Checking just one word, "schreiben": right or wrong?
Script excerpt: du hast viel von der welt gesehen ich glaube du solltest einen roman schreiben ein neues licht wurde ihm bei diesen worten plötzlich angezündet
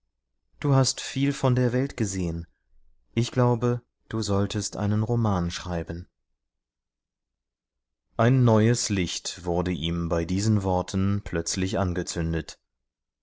right